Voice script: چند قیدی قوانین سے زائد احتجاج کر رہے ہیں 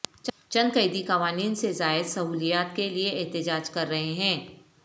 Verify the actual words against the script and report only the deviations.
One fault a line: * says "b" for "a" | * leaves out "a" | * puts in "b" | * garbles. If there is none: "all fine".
* puts in "سہولیات کے لیے"